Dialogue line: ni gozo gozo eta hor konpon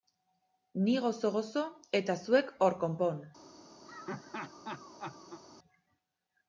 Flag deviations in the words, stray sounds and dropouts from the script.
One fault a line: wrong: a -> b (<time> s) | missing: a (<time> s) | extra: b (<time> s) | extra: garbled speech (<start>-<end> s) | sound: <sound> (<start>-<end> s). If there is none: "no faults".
extra: zuek (2.3 s)
sound: laugh (3.9-5.4 s)